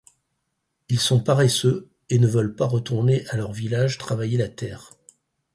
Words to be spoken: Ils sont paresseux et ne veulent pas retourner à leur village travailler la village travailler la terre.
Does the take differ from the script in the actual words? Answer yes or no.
yes